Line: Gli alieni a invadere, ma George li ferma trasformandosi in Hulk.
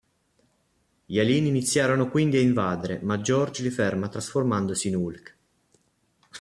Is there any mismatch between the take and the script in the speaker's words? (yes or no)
yes